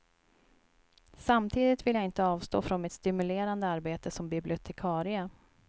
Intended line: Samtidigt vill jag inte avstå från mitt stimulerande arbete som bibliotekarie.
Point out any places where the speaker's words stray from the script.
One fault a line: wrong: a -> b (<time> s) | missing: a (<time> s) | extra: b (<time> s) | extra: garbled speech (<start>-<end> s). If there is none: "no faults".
no faults